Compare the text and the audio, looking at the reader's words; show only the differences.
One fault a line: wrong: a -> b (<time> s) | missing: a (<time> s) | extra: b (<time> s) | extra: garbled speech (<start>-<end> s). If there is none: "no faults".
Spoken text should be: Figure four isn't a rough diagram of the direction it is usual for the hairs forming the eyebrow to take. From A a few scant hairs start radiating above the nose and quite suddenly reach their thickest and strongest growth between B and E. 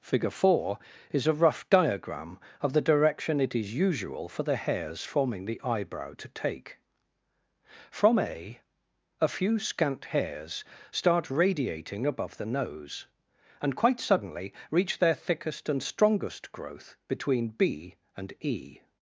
wrong: isn't -> is (1.1 s)